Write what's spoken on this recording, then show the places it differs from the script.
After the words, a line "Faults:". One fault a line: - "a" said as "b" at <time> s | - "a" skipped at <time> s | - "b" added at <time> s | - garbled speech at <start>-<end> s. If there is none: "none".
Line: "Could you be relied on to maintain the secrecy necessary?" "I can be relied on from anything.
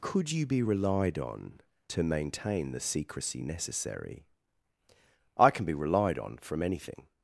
"Could you be relied on to maintain the secrecy necessary?" "I can be relied on from anything.
Faults:
none